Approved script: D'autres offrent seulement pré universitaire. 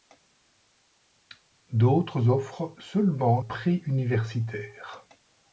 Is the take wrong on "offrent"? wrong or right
right